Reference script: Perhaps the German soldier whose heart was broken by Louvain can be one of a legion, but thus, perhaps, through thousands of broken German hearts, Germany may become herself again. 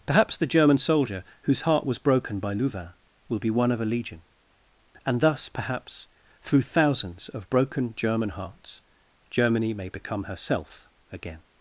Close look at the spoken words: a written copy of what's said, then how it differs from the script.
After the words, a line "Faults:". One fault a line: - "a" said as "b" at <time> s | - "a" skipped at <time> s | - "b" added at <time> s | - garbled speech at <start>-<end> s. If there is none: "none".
Perhaps the German soldier whose heart was broken by Louvain will be one of a legion, and thus, perhaps, through thousands of broken German hearts, Germany may become herself again.
Faults:
- "can" said as "will" at 3.3 s
- "but" said as "and" at 5.0 s